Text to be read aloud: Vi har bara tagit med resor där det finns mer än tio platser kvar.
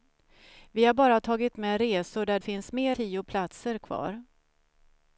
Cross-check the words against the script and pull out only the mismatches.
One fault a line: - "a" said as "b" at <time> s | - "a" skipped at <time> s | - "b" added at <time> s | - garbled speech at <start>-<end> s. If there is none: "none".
- "det" skipped at 2.4 s
- "än" skipped at 3.0 s